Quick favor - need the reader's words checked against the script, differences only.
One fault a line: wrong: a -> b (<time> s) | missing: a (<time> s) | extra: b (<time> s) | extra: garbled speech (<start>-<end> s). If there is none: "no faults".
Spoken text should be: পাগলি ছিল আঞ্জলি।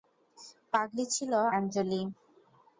no faults